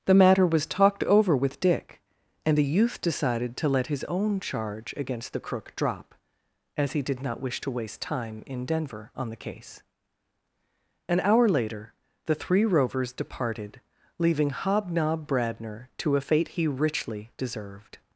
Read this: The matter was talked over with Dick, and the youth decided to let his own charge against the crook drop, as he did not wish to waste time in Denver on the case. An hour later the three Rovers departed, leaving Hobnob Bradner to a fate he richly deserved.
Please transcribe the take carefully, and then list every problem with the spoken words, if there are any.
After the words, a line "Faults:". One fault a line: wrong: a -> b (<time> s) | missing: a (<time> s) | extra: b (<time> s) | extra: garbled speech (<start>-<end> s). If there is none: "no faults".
The matter was talked over with Dick, and the youth decided to let his own charge against the crook drop, as he did not wish to waste time in Denver on the case. An hour later the three Rovers departed, leaving Hobnob Bradner to a fate he richly deserved.
Faults:
no faults